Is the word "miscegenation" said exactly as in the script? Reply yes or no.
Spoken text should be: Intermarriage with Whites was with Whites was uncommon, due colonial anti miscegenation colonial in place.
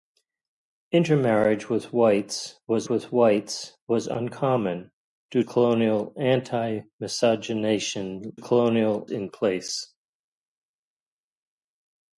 yes